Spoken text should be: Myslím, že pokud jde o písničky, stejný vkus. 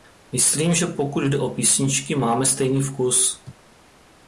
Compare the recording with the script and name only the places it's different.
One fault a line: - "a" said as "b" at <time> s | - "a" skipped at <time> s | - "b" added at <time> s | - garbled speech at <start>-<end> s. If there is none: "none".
- "máme" added at 2.1 s